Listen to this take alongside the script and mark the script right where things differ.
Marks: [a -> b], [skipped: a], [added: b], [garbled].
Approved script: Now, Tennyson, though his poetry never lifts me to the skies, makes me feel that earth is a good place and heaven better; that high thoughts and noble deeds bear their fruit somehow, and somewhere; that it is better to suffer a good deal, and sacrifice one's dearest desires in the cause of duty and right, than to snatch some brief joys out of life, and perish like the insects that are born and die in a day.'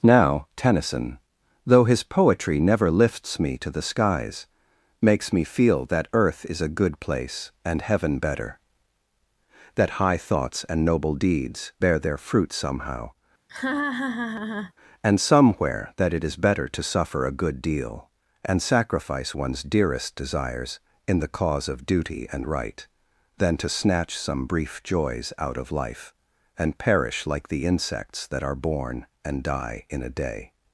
Now, Tennyson, though his poetry never lifts me to the skies, makes me feel that earth is a good place and heaven better; that high thoughts and noble deeds bear their fruit somehow, and somewhere; that it is better to suffer a good deal, and sacrifice one's dearest desires in the cause of duty and right, than to snatch some brief joys out of life, and perish like the insects that are born and die in a day.'